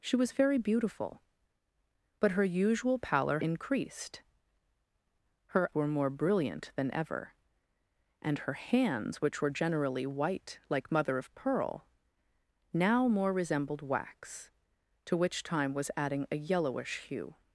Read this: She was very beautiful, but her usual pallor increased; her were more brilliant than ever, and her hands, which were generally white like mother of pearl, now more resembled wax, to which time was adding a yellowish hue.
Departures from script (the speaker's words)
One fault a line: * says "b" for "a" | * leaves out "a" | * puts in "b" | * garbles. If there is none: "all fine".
all fine